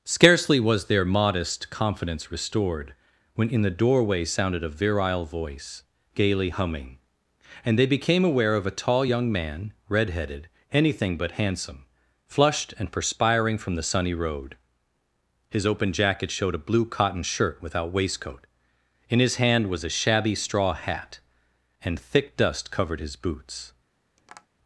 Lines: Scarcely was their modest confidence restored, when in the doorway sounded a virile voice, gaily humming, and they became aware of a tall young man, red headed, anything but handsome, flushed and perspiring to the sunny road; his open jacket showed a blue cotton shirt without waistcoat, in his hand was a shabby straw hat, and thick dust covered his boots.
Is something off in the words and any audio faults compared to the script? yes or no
yes